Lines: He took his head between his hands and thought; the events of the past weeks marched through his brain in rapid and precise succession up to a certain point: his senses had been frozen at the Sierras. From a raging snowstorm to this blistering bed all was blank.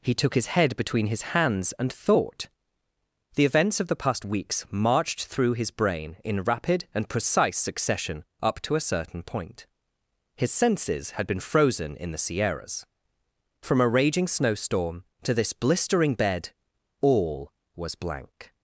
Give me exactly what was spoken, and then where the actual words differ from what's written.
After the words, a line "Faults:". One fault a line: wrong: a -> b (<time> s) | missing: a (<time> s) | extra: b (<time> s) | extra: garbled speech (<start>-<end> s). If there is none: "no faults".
He took his head between his hands and thought; the events of the past weeks marched through his brain in rapid and precise succession up to a certain point: his senses had been frozen in the Sierras. From a raging snowstorm to this blistering bed all was blank.
Faults:
wrong: at -> in (12.0 s)